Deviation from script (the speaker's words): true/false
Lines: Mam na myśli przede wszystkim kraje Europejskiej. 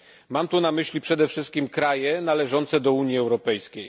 true